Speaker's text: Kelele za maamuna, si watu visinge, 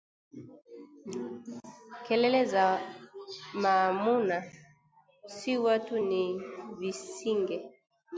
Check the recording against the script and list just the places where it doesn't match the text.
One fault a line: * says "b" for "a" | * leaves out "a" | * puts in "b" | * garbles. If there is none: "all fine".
* puts in "ni"